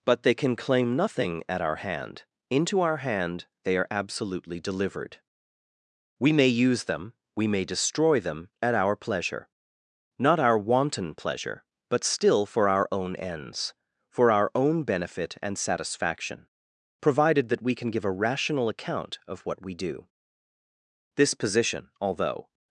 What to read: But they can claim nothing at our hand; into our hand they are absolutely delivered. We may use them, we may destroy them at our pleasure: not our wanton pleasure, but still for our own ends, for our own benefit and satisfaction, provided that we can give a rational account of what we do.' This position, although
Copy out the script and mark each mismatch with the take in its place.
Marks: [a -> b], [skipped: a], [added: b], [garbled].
But they can claim nothing at our hand; into our hand they are absolutely delivered. We may use them, we may destroy them at our pleasure: not our wanton pleasure, but still for our own ends, for our own benefit and satisfaction, provided that we can give a rational account of what we do.' This position, although